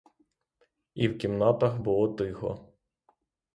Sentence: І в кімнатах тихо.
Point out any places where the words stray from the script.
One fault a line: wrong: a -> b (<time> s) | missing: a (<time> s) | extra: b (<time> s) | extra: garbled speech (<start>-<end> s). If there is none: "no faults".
extra: було (1.8 s)